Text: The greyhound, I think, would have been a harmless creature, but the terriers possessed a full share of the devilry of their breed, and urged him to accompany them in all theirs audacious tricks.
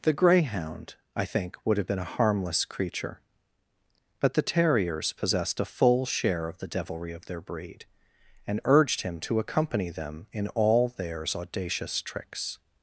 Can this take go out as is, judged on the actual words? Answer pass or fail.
pass